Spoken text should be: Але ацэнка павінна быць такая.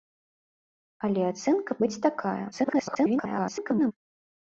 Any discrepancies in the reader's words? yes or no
yes